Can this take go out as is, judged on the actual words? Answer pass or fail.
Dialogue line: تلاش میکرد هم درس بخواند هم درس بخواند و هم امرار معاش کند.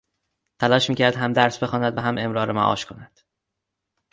fail